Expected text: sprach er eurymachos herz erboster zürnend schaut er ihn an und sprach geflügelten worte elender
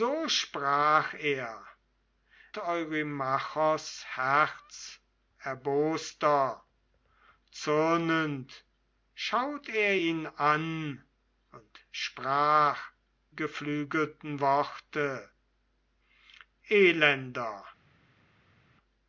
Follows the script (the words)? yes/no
yes